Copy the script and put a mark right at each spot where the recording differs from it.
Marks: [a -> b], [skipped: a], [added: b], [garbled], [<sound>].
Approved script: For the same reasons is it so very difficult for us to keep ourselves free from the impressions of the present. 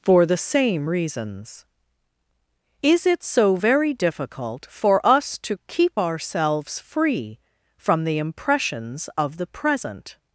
For the same reasons is it so very difficult for us to keep ourselves free from the impressions of the present.